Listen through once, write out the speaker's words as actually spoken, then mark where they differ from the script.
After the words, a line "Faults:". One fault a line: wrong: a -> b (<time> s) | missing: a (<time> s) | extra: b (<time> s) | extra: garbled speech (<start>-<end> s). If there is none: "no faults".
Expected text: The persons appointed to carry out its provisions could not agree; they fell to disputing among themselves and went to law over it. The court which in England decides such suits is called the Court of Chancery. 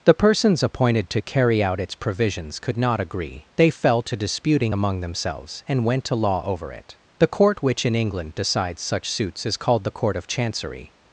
The persons appointed to carry out its provisions could not agree; they fell to disputing among themselves and went to law over it. The court which in England decides such suits is called the Court of Chancery.
Faults:
no faults